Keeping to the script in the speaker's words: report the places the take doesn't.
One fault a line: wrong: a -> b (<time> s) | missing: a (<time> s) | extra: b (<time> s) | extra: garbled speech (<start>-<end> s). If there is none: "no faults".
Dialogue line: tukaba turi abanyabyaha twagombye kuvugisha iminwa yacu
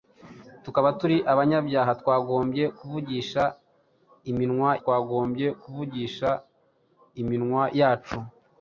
extra: twagombye kuvugisha iminwa (4.8 s)